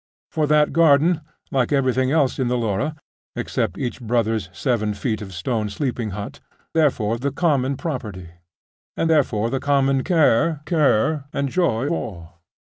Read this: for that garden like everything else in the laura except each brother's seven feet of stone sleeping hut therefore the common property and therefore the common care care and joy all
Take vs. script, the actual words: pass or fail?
pass